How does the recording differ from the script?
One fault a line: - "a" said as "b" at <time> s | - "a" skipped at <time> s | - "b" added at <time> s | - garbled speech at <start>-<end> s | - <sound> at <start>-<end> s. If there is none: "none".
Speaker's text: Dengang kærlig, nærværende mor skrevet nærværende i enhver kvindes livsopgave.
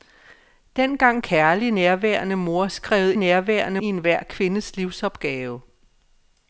none